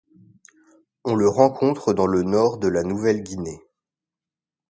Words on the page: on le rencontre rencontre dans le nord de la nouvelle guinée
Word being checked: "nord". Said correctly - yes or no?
yes